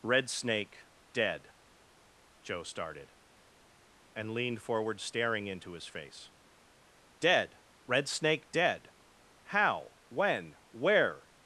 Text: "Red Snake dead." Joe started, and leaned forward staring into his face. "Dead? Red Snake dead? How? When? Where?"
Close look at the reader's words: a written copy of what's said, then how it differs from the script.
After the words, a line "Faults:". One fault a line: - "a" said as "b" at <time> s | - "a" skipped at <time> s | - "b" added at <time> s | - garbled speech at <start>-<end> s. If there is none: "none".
"Red Snake dead." Joe started, and leaned forward staring into his face. "Dead? Red Snake dead? How? When? Where?"
Faults:
none